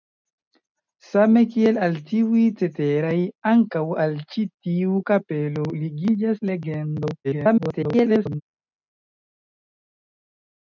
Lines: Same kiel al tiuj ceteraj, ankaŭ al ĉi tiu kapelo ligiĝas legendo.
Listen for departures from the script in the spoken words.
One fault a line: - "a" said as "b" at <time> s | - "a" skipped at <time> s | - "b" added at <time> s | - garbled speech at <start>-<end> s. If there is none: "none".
- garbled speech at 7.2-8.4 s